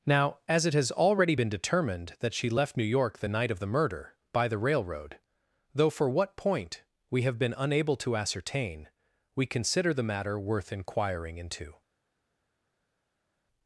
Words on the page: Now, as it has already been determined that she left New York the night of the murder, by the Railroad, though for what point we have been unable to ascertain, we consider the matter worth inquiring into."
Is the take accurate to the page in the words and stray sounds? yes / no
yes